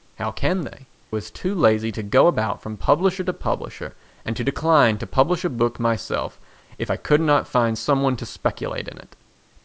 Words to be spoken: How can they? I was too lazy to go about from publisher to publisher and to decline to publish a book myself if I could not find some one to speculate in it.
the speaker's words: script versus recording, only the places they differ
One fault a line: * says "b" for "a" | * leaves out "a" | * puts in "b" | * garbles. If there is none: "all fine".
* leaves out "I"